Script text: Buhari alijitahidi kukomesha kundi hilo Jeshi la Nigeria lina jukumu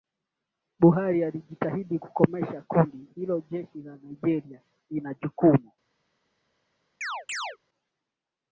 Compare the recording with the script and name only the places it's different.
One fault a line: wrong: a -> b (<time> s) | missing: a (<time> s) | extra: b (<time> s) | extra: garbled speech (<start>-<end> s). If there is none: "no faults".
no faults